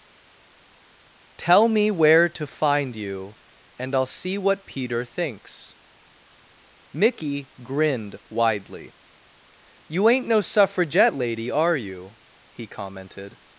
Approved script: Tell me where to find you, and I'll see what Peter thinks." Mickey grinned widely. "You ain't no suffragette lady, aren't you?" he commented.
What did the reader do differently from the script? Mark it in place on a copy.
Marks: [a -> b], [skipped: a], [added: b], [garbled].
Tell me where to find you, and I'll see what Peter thinks." Mickey grinned widely. "You ain't no suffragette lady, [aren't -> are] you?" he commented.